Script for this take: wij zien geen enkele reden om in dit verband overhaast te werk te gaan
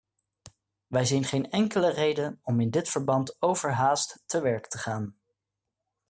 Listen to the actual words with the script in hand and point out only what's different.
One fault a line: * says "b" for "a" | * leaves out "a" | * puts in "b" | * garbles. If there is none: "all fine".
all fine